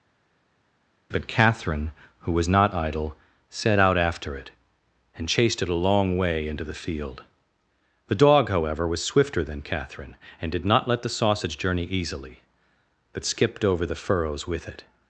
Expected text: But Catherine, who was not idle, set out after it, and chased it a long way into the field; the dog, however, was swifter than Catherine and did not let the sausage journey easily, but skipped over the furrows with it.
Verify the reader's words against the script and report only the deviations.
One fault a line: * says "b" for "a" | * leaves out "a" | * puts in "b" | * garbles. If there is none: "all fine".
all fine